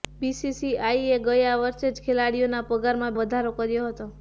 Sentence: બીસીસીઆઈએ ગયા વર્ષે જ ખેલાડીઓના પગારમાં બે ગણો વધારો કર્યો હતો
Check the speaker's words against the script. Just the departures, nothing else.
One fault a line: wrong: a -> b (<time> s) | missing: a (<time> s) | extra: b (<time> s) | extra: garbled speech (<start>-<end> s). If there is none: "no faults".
missing: બે ગણો (3.2 s)